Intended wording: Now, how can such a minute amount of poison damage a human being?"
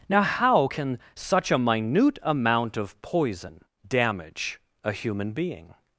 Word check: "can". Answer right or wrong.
right